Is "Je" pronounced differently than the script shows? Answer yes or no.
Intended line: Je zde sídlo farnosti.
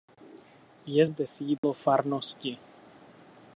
no